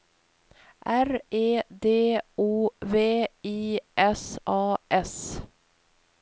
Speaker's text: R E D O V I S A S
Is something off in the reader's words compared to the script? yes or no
no